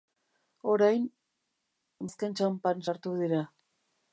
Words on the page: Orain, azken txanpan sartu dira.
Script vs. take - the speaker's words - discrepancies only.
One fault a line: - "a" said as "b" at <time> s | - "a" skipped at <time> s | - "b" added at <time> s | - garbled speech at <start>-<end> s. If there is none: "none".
none